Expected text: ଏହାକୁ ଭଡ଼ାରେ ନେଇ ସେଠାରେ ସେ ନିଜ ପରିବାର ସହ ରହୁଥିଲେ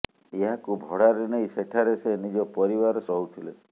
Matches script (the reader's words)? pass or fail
fail